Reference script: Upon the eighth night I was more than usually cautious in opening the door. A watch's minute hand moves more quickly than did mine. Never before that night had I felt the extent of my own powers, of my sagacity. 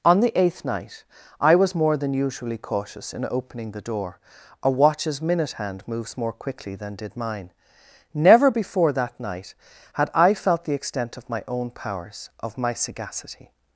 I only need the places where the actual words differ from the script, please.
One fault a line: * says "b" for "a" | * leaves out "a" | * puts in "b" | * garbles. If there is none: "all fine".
* says "On" for "Upon"